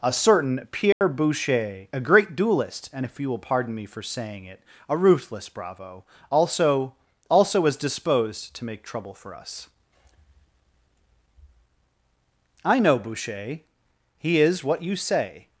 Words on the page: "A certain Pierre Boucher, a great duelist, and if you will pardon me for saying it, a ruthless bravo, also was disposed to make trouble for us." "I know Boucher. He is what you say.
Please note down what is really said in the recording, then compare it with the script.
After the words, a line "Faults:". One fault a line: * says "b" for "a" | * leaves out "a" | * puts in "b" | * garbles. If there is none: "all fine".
"A certain Pierre Boucher, a great duelist, and if you will pardon me for saying it, a ruthless bravo, also also was disposed to make trouble for us." "I know Boucher. He is what you say.
Faults:
* puts in "also"